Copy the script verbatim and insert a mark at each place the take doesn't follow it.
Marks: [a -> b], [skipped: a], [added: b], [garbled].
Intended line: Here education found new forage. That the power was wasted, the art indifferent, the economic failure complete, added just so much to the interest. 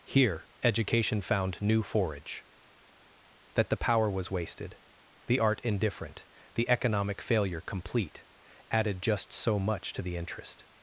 Here education found new forage. That the power was wasted, the art indifferent, the economic failure complete, added just so much to the interest.